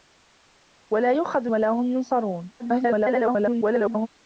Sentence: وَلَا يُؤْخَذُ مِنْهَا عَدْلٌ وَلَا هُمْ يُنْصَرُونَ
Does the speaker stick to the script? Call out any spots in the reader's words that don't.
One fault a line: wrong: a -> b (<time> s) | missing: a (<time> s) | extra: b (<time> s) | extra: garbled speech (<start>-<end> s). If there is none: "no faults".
missing: مِنْهَا عَدْلٌ (1.5 s)
extra: garbled speech (2.6-4.1 s)